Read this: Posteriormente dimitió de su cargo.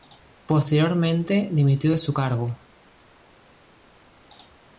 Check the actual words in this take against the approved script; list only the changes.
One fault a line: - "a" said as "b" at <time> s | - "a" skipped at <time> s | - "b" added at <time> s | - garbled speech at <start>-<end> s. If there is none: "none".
none